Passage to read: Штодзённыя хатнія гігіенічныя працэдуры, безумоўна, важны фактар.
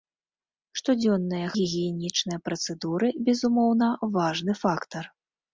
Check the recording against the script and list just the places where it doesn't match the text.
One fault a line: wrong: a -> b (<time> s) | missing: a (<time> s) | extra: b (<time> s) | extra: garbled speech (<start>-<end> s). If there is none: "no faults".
missing: хатнія (1.5 s)